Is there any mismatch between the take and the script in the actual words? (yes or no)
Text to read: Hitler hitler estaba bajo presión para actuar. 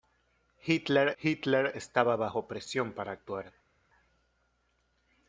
no